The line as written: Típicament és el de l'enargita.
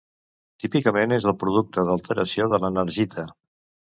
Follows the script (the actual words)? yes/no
no